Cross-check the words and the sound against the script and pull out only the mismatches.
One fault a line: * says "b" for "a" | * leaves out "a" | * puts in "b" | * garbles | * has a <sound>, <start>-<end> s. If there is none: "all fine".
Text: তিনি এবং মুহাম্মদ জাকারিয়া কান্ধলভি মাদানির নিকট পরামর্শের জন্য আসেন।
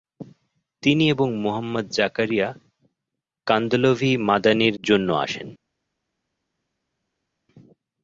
* leaves out "নিকট পরামর্শের"